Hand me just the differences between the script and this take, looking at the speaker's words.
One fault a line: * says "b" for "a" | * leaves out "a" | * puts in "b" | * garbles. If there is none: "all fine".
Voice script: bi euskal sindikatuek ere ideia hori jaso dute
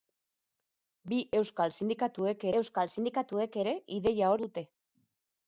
* puts in "euskal sindikatuek"
* leaves out "hori jaso"